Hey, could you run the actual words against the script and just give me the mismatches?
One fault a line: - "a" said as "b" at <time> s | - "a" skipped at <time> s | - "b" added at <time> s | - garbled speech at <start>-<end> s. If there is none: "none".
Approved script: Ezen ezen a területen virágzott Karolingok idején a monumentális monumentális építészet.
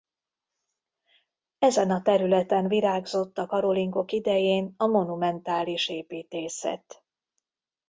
- "ezen" skipped at 1.9 s
- "a" added at 3.4 s
- "monumentális" skipped at 5.9 s